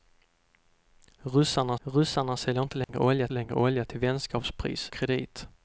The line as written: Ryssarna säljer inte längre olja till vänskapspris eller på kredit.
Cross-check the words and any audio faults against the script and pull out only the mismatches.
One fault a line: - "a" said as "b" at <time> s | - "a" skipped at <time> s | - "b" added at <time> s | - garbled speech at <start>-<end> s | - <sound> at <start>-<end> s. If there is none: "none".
- "ryssarna" added at 1.8 s
- dropout at 2.8-2.9 s
- "längre olja" added at 3.3 s
- "eller på" skipped at 4.9 s